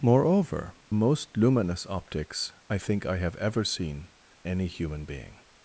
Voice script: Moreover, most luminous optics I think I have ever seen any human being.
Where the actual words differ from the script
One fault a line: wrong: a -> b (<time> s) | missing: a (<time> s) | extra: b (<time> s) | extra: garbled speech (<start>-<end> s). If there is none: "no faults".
no faults